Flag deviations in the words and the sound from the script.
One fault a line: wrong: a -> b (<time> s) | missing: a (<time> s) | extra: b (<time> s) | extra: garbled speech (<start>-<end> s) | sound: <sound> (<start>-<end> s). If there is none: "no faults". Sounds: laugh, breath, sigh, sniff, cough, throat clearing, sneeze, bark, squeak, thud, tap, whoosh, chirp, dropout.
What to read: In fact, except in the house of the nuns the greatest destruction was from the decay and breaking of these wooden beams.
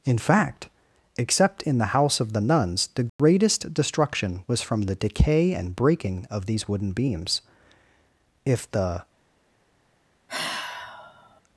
sound: dropout (3.1-3.2 s)
extra: If the (8.5 s)
sound: sigh (10.3-11.4 s)